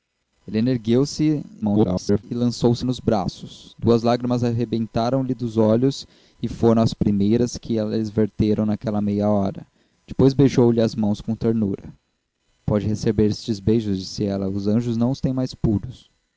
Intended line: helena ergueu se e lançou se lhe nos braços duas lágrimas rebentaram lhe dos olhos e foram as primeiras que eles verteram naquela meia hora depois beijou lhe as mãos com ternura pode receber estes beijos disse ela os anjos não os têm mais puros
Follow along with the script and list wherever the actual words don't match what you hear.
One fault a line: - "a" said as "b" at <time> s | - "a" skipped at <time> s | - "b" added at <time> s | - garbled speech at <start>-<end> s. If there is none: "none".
- garbled speech at 1.6-2.2 s
- "lhe" skipped at 2.9 s